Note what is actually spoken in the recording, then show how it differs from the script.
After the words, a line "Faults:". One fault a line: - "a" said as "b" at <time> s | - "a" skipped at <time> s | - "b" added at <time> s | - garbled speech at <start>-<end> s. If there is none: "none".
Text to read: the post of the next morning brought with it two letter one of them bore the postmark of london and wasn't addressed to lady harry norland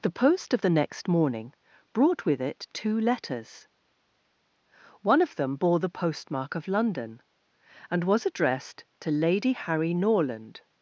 the post of the next morning brought with it two letters one of them bore the postmark of london and was addressed to lady harry norland
Faults:
- "letter" said as "letters" at 3.0 s
- "wasn't" said as "was" at 8.0 s